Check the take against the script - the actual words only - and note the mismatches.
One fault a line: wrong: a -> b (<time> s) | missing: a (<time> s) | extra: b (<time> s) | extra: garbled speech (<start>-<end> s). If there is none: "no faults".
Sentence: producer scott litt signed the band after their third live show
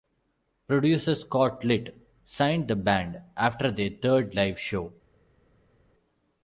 no faults